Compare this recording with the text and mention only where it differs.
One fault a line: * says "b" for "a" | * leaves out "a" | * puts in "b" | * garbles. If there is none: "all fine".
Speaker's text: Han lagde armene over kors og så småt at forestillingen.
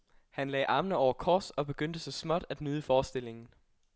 * puts in "begyndte"
* puts in "nyde"